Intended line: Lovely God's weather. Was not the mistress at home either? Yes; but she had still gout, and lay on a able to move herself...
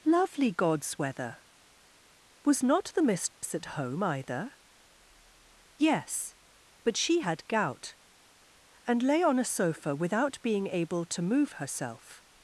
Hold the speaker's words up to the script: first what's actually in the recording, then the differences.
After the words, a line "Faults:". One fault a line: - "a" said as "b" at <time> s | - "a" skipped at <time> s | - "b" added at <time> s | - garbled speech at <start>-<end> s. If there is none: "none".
Lovely God's weather. Was not the mistress at home either? Yes; but she had gout, and lay on a sofa without being able to move herself...
Faults:
- "still" skipped at 7.5 s
- "sofa without being" added at 9.4 s